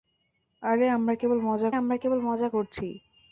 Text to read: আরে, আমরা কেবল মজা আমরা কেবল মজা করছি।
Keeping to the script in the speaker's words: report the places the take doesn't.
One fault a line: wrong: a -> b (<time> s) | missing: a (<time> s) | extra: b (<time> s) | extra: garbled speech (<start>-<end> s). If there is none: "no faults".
no faults